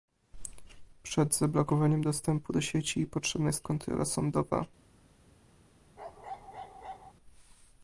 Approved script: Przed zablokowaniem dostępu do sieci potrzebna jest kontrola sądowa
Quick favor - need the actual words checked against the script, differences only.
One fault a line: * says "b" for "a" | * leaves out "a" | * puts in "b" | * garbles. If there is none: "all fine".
all fine